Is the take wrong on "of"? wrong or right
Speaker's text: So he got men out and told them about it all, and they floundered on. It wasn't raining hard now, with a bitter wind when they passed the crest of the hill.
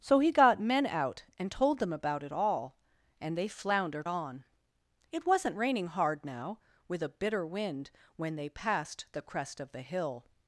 right